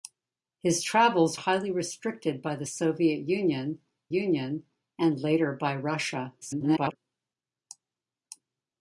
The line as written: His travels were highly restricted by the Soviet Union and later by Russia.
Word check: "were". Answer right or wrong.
wrong